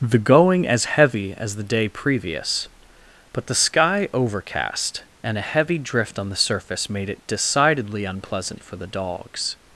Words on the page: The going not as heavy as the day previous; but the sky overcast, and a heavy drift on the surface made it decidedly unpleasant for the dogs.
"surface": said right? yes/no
yes